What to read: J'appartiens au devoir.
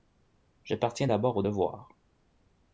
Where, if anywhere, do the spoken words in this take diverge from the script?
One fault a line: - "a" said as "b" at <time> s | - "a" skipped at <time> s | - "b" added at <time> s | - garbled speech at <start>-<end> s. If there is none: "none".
- "d'abord" added at 1.0 s